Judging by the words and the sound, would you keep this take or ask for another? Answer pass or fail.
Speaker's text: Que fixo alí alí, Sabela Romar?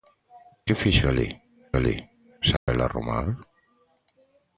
fail